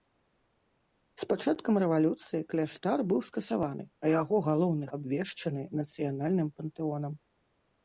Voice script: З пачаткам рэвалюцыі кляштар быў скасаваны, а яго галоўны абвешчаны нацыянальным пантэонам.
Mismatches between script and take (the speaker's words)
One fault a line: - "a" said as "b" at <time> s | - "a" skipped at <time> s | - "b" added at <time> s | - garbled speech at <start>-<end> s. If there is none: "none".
none